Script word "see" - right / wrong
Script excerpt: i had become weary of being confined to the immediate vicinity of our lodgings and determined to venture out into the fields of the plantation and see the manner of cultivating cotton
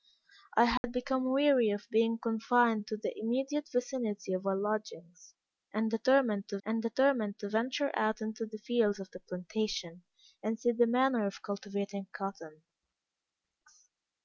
right